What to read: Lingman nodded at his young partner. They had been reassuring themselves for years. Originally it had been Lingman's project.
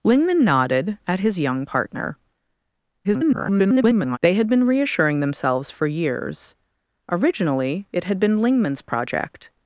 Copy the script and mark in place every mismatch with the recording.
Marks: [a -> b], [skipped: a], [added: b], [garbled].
Lingman nodded at his young partner. [garbled] They had been reassuring themselves for years. Originally it had been Lingman's project.